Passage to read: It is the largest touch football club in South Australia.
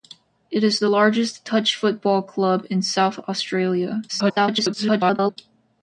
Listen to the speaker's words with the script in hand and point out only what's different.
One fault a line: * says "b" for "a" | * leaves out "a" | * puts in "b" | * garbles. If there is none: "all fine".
* garbles